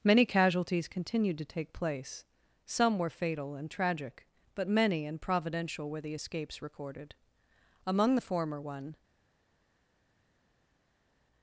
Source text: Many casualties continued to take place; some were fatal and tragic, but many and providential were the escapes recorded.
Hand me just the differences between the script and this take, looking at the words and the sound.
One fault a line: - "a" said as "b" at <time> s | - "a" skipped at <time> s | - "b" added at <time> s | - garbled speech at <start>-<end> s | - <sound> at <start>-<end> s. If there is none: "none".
- "Among the former one" added at 7.9 s